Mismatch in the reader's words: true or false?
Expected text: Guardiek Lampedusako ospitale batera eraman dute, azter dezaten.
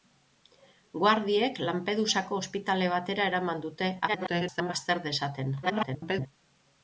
true